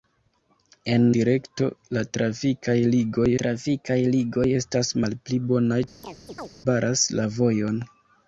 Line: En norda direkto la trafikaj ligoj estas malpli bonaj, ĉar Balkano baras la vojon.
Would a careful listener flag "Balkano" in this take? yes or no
yes